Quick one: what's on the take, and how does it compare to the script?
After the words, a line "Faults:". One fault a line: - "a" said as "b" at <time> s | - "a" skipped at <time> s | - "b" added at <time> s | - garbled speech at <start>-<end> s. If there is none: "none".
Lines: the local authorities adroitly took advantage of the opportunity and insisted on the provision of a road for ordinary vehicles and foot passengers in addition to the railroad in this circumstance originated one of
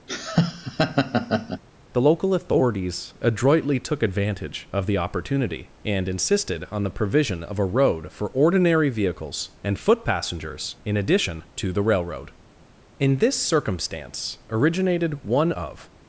the local authorities adroitly took advantage of the opportunity and insisted on the provision of a road for ordinary vehicles and foot passengers in addition to the railroad in this circumstance originated one of
Faults:
none